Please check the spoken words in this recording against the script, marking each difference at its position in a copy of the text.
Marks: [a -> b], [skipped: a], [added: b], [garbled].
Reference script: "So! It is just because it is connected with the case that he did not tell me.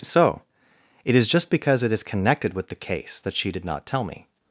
"So! It is just because it is connected with the case that [he -> she] did not tell me.